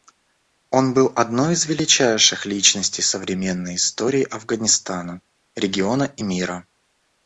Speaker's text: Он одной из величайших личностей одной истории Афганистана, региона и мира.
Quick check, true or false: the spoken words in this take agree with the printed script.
false